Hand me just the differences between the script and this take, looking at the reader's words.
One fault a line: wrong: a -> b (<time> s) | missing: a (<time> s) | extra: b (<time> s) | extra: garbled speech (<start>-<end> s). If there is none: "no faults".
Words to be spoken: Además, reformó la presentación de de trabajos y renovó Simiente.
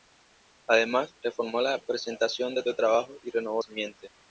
no faults